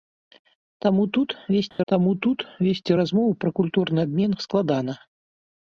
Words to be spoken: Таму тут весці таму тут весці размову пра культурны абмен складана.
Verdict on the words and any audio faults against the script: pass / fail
fail